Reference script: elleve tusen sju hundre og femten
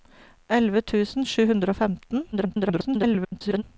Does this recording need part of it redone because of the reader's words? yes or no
yes